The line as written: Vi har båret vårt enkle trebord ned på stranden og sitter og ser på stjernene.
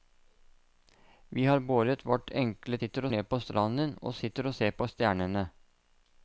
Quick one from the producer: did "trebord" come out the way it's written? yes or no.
no